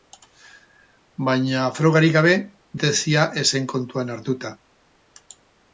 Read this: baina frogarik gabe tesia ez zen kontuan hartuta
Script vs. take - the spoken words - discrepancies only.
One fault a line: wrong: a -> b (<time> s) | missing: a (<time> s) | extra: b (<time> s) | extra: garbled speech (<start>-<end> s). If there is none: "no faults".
no faults